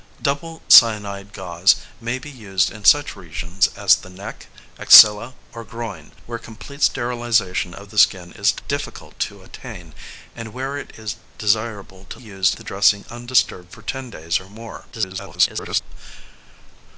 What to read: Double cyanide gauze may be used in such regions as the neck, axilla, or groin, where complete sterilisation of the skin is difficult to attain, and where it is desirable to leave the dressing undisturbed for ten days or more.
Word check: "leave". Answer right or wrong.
wrong